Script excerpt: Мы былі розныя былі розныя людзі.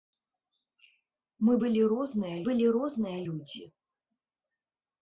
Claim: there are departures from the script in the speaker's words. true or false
false